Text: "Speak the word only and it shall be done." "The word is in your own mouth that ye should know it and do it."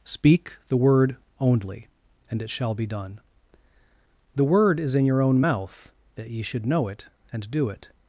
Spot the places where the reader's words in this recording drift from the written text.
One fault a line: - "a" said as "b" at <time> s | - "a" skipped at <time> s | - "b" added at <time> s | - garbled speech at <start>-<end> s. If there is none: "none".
none